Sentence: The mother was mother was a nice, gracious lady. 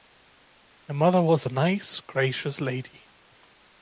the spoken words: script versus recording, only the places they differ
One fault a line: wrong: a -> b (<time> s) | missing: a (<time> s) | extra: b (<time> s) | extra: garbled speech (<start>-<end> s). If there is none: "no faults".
missing: mother was (1.5 s)